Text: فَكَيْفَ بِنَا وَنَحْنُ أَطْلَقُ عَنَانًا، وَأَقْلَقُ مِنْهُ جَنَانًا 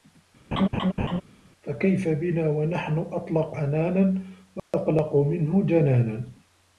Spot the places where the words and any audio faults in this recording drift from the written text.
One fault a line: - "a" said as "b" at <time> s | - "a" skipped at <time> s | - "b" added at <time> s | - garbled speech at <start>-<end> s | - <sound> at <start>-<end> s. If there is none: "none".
- laugh at 0.5-1.2 s
- dropout at 4.6-4.7 s